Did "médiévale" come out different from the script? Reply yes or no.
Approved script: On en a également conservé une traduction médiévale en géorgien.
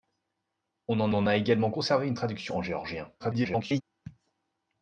yes